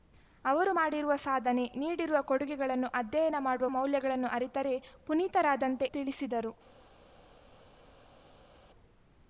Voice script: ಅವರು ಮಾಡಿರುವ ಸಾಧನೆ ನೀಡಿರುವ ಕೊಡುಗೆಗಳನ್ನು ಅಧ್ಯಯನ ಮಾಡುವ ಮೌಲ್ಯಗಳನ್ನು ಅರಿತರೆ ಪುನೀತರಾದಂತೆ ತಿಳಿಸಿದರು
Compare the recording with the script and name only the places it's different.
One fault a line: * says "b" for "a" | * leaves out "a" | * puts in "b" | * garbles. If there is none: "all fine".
all fine